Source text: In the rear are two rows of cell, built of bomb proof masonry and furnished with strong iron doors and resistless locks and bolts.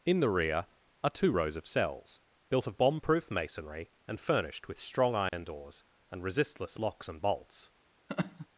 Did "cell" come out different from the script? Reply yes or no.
yes